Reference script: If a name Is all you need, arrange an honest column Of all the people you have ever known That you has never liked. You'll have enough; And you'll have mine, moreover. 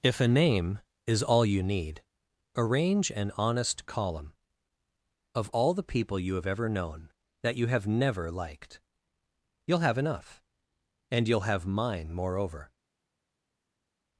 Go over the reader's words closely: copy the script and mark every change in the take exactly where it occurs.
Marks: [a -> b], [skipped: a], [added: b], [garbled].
If a name Is all you need, arrange an honest column Of all the people you have ever known That you [has -> have] never liked. You'll have enough; And you'll have mine, moreover.